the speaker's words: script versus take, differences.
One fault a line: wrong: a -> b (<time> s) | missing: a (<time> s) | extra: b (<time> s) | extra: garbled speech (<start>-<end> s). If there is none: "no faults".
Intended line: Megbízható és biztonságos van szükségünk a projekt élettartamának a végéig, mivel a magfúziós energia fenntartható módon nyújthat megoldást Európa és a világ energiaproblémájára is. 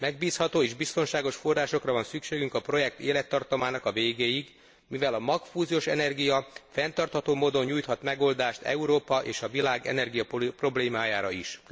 extra: forrásokra (1.4 s)